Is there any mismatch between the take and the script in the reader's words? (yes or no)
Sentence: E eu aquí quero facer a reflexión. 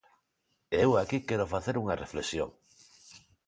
yes